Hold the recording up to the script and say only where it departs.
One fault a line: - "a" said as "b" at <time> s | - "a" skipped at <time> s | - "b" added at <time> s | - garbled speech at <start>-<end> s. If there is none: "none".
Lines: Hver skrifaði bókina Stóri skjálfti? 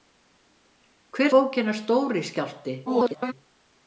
- "skrifaði" skipped at 1.4 s
- garbled speech at 2.9-3.3 s